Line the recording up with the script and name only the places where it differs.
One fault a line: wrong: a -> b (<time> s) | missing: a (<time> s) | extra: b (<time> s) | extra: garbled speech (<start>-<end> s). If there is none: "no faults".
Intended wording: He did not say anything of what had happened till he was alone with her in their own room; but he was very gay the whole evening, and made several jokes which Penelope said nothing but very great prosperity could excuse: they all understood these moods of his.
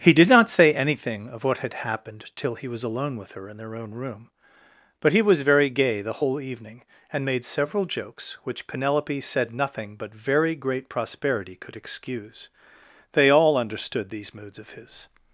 no faults